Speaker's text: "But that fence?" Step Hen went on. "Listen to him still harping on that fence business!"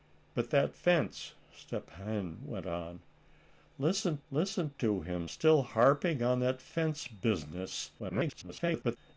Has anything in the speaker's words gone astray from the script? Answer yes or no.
yes